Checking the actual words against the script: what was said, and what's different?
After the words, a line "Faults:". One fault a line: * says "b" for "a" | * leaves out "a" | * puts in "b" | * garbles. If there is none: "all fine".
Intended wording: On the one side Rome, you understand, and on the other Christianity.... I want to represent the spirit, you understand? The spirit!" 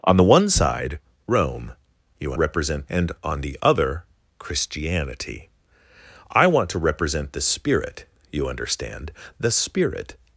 On the one side Rome, you represent, and on the other Christianity.... I want to represent the spirit, you understand? The spirit!"
Faults:
* says "represent" for "understand"